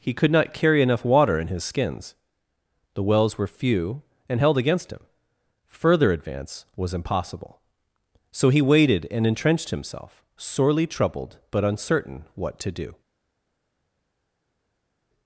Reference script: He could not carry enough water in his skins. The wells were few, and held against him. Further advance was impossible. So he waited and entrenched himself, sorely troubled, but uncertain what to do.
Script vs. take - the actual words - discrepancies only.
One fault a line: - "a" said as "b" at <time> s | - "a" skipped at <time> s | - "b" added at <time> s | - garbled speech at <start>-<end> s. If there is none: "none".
none